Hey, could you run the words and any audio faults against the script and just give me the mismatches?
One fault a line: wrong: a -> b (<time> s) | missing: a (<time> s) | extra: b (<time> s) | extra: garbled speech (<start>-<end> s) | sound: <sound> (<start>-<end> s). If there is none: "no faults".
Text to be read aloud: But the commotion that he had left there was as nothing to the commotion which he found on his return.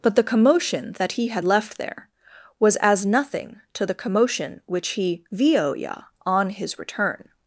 wrong: found -> vioya (5.3 s)